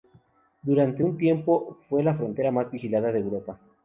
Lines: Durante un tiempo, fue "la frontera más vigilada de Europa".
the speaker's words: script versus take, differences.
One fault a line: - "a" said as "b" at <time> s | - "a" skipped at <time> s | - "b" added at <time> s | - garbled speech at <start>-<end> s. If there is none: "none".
none